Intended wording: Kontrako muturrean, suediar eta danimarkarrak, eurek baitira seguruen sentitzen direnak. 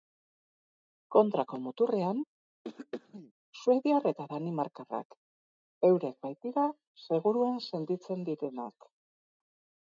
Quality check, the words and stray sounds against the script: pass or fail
fail